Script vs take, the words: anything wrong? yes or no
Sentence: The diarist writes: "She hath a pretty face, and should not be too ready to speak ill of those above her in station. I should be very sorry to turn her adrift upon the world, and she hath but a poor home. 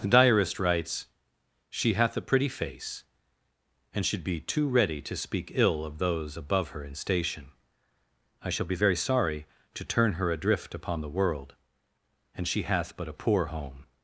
yes